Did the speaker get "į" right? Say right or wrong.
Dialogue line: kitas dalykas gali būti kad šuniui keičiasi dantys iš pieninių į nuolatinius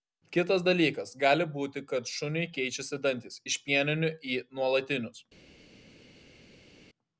right